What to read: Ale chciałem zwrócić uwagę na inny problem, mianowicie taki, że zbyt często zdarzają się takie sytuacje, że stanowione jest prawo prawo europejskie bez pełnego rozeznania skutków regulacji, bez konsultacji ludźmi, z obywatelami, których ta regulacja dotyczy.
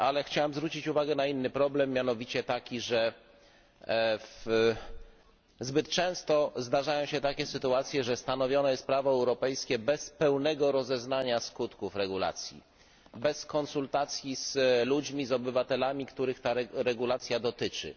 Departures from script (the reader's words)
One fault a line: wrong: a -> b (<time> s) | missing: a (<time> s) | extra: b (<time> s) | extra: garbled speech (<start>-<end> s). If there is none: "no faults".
missing: prawo (9.1 s)
extra: z (14.3 s)